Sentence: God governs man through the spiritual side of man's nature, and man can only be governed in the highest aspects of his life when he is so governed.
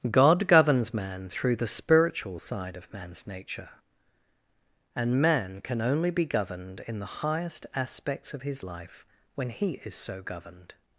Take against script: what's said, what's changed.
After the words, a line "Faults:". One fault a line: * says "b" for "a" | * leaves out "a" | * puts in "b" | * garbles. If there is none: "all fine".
God governs man through the spiritual side of man's nature, and man can only be governed in the highest aspects of his life when he is so governed.
Faults:
all fine